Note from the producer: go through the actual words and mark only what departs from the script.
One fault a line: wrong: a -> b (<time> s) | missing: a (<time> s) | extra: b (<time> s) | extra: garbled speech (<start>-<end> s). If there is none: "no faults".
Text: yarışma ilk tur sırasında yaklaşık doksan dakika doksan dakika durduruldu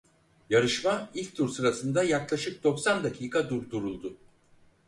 missing: doksan dakika (3.5 s)